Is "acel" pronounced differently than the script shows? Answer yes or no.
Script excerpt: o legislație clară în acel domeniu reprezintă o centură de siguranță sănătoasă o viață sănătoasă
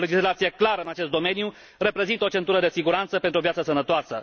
yes